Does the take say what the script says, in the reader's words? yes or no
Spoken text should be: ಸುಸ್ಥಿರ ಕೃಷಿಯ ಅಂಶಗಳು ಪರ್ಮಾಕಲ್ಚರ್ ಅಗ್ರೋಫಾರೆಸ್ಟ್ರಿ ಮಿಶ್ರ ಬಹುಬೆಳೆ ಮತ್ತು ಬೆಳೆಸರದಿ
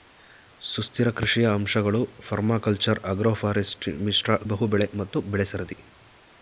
yes